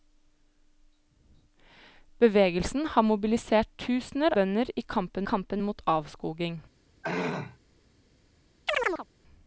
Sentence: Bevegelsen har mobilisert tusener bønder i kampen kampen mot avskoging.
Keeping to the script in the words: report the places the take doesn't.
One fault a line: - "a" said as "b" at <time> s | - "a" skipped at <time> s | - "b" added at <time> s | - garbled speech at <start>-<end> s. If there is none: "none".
none